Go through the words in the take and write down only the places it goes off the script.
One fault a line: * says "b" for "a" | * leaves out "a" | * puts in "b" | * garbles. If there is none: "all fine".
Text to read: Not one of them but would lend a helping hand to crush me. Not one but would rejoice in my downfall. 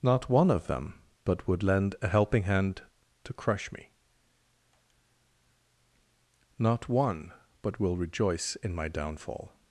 * says "will" for "would"